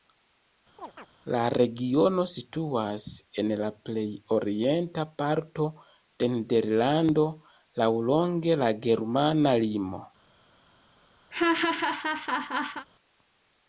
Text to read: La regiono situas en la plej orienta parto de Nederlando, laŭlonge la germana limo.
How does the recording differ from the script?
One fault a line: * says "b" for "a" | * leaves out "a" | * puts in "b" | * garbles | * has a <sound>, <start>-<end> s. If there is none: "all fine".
* has a chirp, 0.8-1.1 s
* has a laugh, 11.3-12.9 s